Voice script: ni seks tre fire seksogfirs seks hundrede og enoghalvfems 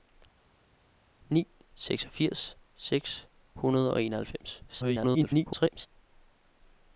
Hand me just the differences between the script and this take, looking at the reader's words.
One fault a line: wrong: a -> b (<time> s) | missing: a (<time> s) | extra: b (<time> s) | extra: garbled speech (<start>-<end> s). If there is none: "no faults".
missing: seks tre fire (1.5 s)
extra: garbled speech (4.7-5.9 s)